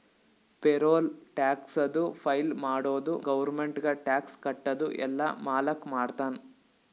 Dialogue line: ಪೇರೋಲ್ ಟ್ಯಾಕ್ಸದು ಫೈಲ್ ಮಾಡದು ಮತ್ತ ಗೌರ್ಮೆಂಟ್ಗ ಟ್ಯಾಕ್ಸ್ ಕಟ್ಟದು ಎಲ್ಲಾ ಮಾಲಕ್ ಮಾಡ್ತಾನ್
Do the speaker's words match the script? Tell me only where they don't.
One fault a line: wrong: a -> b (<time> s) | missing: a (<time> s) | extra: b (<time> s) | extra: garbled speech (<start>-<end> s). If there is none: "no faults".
missing: ಮತ್ತ (3.1 s)